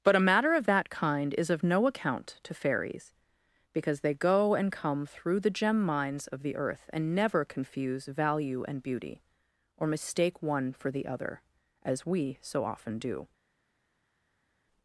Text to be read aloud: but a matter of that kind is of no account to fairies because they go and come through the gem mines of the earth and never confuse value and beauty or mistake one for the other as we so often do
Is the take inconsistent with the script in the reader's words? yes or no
no